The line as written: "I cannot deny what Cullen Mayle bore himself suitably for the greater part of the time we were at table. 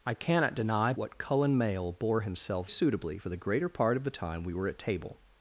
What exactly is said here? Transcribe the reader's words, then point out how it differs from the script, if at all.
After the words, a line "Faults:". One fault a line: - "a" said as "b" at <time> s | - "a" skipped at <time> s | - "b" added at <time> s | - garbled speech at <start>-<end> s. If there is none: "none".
"I cannot deny what Cullen Mayle bore himself suitably for the greater part of the time we were at table.
Faults:
none